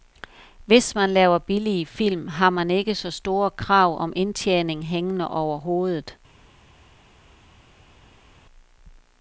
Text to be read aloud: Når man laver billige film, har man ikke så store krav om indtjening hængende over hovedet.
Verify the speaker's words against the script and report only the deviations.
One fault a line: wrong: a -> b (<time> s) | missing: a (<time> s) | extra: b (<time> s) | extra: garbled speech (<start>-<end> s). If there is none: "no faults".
wrong: Når -> Hvis (0.7 s)